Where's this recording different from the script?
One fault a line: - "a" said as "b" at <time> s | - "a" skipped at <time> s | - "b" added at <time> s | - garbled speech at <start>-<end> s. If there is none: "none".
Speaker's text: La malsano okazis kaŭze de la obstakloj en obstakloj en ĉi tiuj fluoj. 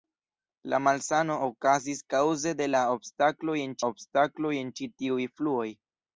none